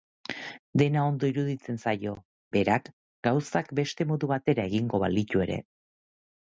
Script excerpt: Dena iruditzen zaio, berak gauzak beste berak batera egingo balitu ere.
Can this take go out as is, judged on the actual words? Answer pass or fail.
fail